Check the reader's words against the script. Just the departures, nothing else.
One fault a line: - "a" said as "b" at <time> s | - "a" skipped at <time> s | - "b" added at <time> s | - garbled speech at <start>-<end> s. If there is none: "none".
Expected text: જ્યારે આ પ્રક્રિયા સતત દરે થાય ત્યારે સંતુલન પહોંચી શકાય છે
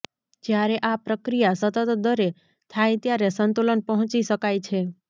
none